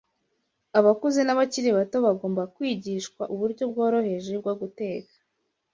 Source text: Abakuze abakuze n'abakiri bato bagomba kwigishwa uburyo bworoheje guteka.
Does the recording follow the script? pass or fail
fail